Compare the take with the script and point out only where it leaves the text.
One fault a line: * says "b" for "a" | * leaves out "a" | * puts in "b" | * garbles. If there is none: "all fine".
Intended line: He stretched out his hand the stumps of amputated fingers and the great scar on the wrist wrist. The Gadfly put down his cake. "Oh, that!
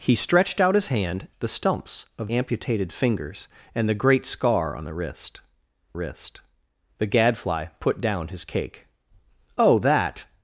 all fine